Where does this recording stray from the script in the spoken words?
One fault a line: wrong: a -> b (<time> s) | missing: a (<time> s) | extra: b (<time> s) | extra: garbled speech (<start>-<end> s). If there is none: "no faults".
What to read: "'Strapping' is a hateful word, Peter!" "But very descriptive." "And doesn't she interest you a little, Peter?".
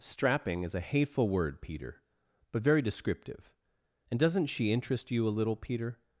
no faults